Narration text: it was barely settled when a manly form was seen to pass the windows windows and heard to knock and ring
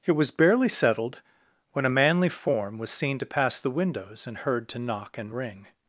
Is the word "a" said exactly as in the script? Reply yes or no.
yes